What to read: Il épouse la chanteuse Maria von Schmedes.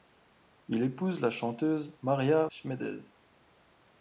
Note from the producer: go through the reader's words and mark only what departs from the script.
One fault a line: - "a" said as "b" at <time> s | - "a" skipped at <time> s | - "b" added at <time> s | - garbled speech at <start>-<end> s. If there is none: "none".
- "von" skipped at 2.5 s